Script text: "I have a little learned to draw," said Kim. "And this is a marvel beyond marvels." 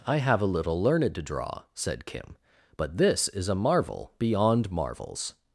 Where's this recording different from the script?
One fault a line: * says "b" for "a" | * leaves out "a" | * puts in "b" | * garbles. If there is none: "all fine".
* says "But" for "And"